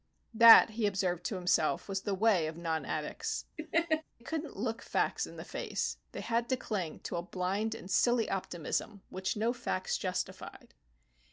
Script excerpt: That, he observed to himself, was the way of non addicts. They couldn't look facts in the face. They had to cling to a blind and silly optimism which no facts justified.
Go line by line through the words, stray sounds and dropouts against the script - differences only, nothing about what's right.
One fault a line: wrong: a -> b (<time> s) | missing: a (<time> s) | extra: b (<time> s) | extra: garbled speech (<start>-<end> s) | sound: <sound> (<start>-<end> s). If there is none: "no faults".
missing: They (3.5 s)
sound: laugh (3.6-4.0 s)